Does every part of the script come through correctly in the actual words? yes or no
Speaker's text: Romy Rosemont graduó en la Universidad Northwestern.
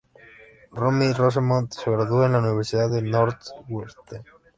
no